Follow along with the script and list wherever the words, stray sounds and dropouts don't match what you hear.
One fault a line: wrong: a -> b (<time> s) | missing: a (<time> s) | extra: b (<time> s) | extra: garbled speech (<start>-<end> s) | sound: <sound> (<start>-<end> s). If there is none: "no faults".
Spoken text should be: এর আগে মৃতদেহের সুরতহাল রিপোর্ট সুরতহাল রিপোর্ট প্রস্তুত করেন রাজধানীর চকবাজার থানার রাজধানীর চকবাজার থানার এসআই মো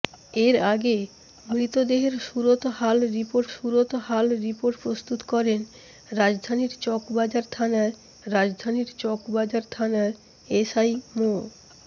no faults